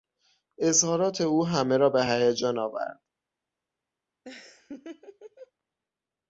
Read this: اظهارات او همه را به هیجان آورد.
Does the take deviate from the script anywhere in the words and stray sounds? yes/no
yes